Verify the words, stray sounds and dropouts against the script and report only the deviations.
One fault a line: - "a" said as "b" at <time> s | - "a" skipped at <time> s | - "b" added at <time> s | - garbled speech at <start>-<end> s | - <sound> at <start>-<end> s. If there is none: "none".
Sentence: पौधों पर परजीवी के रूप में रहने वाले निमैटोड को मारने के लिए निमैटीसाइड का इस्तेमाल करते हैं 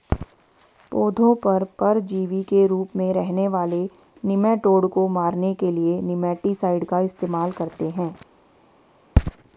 none